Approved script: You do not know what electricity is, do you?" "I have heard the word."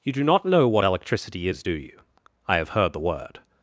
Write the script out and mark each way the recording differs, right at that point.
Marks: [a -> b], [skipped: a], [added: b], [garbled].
You do not know what electricity is, do you?" "I have heard the word."